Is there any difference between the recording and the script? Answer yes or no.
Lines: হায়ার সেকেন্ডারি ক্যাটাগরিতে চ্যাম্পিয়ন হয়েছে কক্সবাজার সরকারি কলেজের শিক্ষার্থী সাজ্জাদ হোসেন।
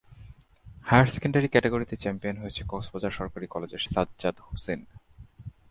yes